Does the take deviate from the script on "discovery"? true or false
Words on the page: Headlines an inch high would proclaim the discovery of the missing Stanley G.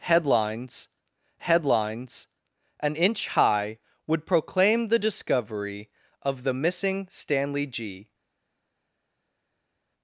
false